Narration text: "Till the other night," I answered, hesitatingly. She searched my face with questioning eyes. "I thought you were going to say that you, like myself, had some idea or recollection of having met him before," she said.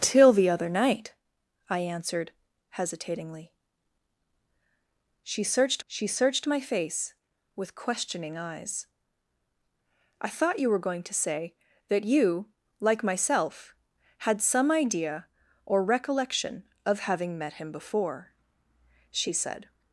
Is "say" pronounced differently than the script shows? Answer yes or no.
no